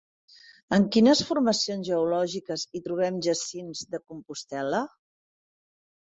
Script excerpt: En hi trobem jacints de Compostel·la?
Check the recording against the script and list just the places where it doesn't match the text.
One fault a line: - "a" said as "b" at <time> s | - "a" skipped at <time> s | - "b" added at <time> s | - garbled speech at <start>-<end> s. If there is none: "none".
- "quines formacions geològiques" added at 0.9 s